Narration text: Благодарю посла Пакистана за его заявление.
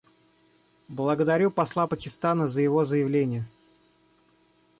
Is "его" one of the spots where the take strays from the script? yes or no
no